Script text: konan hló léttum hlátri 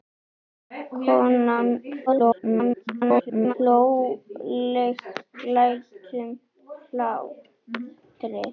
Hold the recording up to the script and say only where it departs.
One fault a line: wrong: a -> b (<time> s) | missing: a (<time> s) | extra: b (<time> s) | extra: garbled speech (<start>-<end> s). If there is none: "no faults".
extra: garbled speech (2.1-3.5 s)